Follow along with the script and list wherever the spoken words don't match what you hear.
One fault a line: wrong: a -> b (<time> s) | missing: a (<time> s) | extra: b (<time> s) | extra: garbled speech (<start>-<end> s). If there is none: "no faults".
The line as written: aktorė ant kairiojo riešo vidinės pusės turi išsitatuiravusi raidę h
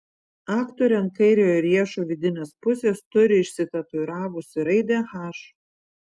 no faults